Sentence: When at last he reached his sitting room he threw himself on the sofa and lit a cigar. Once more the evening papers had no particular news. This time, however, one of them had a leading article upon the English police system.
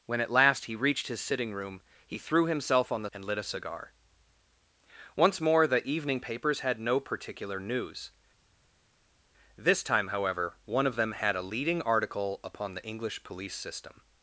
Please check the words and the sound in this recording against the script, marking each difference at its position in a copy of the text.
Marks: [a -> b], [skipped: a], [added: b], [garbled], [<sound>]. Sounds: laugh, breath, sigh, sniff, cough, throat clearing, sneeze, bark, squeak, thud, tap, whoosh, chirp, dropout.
When at last he reached his sitting room he threw himself on the [skipped: sofa] and lit a cigar. Once more the evening papers had no particular news. This time, however, one of them had a leading article upon the English police system.